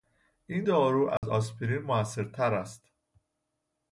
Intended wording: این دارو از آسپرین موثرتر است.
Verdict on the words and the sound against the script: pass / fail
fail